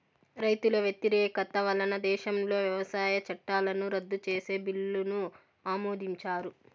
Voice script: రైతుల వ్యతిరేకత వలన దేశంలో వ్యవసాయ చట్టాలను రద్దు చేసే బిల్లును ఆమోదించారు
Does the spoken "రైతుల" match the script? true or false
true